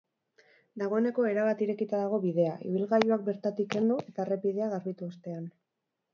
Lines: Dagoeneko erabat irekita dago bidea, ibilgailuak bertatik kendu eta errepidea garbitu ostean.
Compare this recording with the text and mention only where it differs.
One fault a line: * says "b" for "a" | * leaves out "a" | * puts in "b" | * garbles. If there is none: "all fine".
all fine